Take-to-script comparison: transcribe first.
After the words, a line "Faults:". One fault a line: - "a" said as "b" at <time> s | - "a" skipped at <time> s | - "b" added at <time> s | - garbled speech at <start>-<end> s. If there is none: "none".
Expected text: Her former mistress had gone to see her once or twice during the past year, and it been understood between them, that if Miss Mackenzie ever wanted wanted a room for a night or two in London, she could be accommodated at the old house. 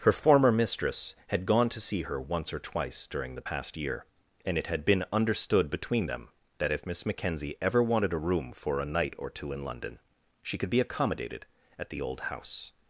Her former mistress had gone to see her once or twice during the past year, and it had been understood between them, that if Miss Mackenzie ever wanted a room for a night or two in London, she could be accommodated at the old house.
Faults:
- "had" added at 4.7 s
- "wanted" skipped at 8.1 s